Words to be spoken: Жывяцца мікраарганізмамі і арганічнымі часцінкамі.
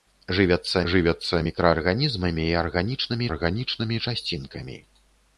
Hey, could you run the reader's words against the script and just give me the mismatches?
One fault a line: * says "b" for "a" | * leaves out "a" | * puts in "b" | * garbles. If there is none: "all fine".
* puts in "жывяцца"
* puts in "арганічнымі"